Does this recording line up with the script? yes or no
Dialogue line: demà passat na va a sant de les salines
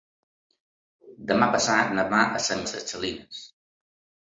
yes